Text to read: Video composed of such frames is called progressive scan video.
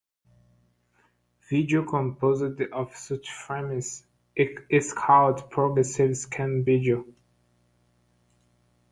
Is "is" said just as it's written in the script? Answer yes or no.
yes